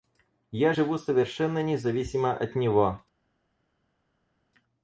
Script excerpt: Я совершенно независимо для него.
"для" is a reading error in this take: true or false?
true